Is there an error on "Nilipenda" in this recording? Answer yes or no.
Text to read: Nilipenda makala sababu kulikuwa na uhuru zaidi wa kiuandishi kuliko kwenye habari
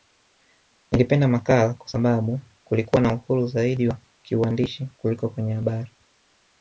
no